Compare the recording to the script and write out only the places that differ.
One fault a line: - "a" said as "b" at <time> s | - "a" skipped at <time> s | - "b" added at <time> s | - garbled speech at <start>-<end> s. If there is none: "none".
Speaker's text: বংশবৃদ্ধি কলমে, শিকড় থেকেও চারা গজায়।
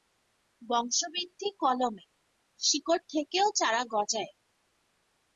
none